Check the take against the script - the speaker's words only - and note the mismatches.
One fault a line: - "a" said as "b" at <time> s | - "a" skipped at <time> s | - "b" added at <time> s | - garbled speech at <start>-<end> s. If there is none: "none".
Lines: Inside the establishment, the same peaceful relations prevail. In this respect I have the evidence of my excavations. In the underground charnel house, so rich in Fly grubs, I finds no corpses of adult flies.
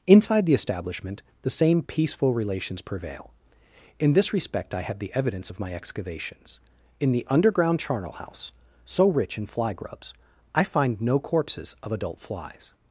- "finds" said as "find" at 10.6 s